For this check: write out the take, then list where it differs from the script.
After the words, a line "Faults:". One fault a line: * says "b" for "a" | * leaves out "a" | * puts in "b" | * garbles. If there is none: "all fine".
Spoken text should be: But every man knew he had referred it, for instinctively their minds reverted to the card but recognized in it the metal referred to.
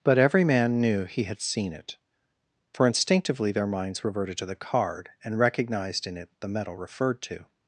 But every man knew he had seen it, for instinctively their minds reverted to the card and recognized in it the metal referred to.
Faults:
* says "seen" for "referred"
* says "and" for "but"